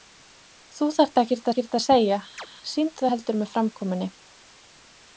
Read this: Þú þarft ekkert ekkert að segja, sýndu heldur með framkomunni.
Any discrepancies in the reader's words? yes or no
no